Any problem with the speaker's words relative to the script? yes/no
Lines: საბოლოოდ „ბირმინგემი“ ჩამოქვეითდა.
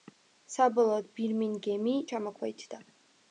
no